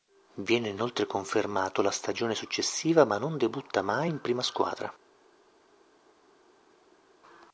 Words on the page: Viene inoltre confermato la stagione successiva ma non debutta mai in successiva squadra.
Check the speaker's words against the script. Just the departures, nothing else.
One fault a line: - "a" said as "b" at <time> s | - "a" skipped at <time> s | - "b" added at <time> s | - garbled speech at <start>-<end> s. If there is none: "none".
- "successiva" said as "prima" at 4.2 s